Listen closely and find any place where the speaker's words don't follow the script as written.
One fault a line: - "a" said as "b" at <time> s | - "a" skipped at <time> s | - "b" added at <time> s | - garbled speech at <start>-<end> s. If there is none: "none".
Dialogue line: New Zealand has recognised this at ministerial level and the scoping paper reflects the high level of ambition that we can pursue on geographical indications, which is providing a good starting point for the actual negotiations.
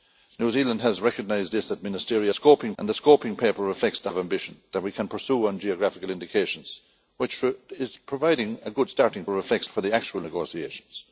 - "level" said as "scoping" at 2.3 s
- "high level" skipped at 4.1 s
- "point" said as "reflects" at 9.3 s